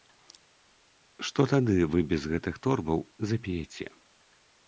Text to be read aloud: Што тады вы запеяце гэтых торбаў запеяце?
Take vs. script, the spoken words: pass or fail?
fail